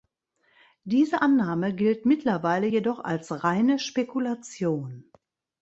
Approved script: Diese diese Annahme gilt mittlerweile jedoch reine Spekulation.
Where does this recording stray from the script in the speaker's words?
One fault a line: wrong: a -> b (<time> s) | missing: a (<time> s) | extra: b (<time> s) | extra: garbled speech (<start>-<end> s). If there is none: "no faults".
missing: diese (1.2 s)
extra: als (3.0 s)